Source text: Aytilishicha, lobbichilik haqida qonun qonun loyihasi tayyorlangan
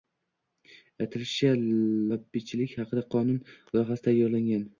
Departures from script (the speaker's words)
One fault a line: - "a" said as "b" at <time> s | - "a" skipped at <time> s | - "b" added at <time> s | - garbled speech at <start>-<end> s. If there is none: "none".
- "qonun" skipped at 3.4 s